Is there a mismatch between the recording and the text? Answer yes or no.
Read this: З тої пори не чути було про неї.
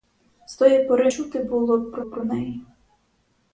yes